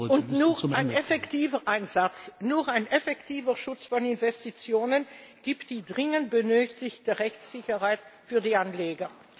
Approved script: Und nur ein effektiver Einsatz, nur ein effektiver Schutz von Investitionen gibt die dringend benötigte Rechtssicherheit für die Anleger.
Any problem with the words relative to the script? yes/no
no